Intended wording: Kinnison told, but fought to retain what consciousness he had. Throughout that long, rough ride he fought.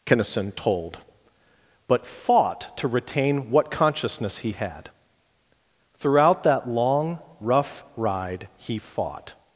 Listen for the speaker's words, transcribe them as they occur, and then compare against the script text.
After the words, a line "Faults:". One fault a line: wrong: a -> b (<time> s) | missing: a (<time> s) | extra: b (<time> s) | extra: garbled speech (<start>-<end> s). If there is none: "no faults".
Kinnison told, but fought to retain what consciousness he had. Throughout that long, rough ride he fought.
Faults:
no faults